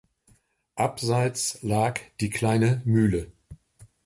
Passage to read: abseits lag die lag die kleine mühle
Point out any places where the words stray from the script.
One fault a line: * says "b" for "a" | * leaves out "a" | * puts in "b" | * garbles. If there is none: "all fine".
* leaves out "lag die"